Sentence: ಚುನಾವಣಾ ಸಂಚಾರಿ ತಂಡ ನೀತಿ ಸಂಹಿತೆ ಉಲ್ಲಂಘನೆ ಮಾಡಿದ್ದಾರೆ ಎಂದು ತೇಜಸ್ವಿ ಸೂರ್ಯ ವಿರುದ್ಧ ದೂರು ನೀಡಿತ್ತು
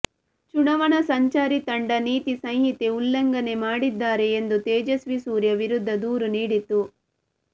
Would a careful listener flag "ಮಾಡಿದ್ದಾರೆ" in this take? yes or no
no